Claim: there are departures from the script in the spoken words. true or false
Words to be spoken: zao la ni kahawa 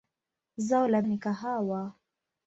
false